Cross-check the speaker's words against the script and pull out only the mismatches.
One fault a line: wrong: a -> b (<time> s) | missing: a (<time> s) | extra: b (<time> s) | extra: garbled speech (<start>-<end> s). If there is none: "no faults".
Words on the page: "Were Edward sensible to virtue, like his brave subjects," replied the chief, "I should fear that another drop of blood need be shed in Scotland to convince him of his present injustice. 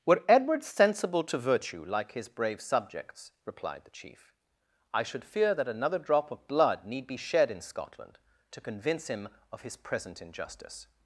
no faults